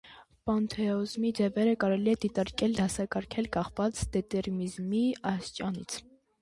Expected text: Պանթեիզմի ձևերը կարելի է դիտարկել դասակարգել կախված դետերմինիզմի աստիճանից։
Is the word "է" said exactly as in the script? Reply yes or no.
yes